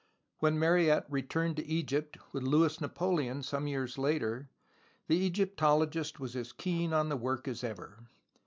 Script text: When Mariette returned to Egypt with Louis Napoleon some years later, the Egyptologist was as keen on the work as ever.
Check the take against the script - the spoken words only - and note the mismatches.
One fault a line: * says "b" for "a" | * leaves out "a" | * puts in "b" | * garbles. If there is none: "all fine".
all fine